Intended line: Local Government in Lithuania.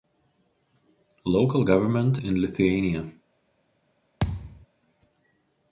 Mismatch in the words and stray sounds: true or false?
true